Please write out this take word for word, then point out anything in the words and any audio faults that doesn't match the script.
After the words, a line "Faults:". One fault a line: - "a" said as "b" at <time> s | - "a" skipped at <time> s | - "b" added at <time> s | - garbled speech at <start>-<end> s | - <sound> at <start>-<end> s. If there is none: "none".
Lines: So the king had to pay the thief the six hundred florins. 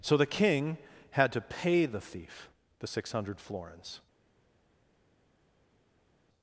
So the king had to pay the thief the six hundred florins.
Faults:
none